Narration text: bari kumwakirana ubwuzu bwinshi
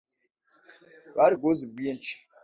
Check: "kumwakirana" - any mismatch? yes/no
yes